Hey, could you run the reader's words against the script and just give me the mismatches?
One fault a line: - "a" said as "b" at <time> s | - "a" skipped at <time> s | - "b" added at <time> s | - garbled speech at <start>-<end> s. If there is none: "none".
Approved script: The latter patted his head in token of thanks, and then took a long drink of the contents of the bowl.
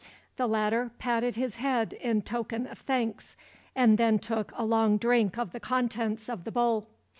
none